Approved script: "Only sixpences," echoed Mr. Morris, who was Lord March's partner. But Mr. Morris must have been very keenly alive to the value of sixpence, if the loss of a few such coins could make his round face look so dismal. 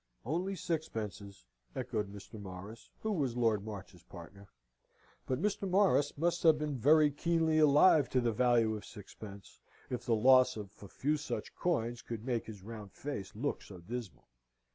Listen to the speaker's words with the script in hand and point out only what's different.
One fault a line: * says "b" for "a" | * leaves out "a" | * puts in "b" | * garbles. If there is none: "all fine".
all fine